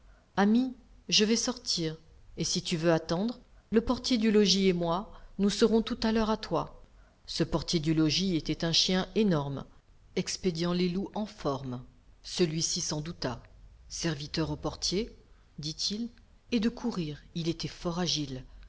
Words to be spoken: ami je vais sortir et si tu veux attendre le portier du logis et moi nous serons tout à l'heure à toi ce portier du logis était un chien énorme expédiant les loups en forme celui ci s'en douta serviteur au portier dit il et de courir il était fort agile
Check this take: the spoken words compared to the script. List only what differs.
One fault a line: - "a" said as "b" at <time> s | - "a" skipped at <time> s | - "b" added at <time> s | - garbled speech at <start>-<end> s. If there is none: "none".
none